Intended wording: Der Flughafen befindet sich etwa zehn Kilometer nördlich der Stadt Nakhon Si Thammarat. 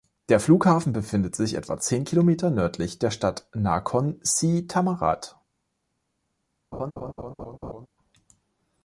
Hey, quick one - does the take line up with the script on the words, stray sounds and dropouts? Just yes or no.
no